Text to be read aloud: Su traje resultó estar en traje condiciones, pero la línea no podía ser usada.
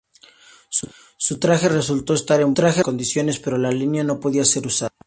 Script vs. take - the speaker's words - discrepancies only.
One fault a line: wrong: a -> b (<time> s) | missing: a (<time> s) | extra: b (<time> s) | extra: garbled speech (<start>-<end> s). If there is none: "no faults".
no faults